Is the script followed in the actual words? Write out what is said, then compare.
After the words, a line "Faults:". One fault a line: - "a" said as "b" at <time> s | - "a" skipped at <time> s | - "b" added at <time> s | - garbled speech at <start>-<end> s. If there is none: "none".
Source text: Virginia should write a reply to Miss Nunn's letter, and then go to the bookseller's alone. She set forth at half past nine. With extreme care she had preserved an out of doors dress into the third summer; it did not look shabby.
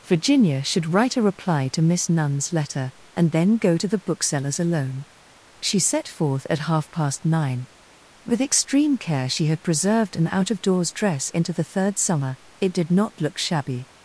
Virginia should write a reply to Miss Nunn's letter, and then go to the bookseller's alone. She set forth at half past nine. With extreme care she had preserved an out of doors dress into the third summer; it did not look shabby.
Faults:
none